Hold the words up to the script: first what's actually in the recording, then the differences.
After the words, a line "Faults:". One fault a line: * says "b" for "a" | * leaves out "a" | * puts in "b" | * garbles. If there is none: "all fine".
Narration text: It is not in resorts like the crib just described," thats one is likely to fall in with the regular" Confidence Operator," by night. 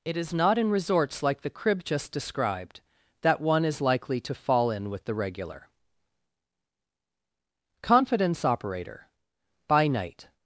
It is not in resorts like the crib just described," that one is likely to fall in with the regular" Confidence Operator," by night.
Faults:
* says "that" for "thats"